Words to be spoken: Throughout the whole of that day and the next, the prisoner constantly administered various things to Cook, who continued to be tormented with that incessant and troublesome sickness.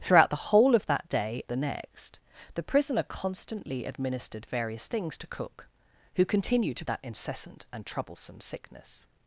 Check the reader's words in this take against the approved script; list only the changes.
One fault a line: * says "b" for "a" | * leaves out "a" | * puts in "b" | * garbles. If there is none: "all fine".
* leaves out "and"
* leaves out "be tormented with"